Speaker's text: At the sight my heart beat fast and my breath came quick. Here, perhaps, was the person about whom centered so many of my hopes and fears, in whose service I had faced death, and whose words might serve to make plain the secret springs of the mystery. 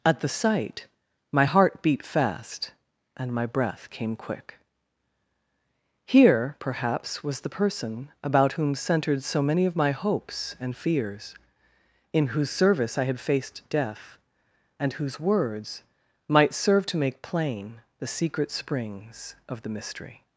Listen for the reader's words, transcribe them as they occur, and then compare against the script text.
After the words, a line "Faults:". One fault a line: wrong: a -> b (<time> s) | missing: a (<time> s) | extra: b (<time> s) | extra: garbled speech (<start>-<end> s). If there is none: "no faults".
At the sight my heart beat fast and my breath came quick. Here, perhaps, was the person about whom centered so many of my hopes and fears, in whose service I had faced death, and whose words might serve to make plain the secret springs of the mystery.
Faults:
no faults